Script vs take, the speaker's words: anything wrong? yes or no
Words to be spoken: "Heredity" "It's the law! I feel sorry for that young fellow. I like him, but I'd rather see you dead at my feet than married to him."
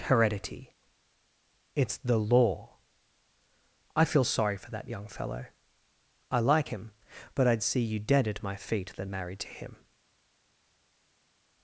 yes